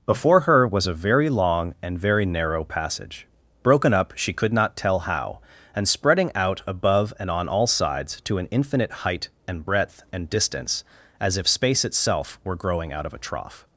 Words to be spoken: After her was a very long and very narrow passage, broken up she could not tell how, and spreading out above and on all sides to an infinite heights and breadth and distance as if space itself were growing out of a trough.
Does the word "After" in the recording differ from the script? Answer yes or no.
yes